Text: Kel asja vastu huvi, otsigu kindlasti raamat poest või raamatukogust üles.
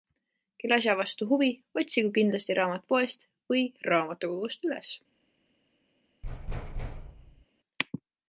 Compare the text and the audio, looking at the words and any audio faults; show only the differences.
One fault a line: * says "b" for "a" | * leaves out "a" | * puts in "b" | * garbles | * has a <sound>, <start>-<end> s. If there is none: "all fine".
* has a thud, 6.2-7.5 s